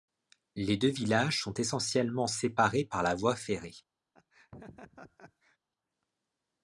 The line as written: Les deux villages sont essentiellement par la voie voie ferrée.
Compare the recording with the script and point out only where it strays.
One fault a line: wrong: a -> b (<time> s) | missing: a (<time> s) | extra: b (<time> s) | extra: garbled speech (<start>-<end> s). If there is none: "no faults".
extra: séparés (2.3 s)
missing: voie (3.4 s)